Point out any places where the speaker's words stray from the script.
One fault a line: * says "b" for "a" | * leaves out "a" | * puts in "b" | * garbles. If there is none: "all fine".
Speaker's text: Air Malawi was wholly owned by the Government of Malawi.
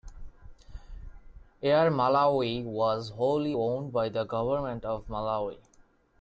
all fine